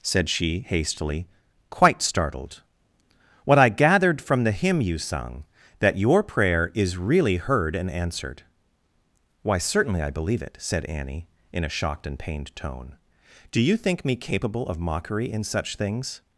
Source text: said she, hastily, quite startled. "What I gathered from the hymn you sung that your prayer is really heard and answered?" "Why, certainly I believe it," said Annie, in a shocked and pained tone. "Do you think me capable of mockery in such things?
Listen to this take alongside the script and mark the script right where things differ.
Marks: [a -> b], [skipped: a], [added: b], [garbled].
said she, hastily, quite startled. "What I gathered from the hymn you sung that your prayer is really heard and answered?" "Why, certainly I believe it," said Annie, in a shocked and pained tone. "Do you think me capable of mockery in such things?